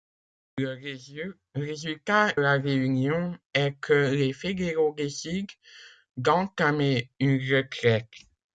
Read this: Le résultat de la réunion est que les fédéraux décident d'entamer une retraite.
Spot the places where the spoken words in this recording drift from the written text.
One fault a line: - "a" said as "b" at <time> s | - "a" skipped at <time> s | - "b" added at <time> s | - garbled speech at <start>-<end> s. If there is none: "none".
- "de" skipped at 2.3 s